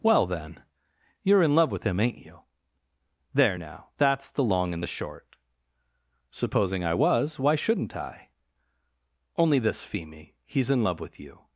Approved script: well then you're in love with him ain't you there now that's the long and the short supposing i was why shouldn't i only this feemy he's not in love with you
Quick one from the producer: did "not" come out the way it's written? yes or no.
no